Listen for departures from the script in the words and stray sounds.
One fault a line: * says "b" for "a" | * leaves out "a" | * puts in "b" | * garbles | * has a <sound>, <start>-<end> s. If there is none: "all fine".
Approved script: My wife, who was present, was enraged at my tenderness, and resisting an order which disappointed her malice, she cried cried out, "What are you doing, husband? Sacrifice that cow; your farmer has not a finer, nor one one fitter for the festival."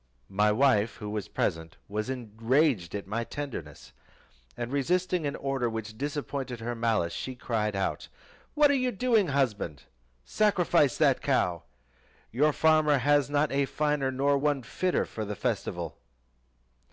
* leaves out "cried"
* leaves out "one"